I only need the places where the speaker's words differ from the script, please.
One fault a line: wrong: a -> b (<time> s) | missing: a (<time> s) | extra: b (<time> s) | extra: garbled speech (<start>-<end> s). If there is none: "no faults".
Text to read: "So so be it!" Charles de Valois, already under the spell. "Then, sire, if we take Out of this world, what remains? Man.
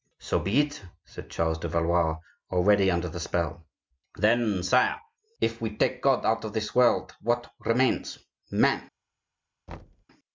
missing: so (0.4 s)
extra: said (1.1 s)
extra: God (6.0 s)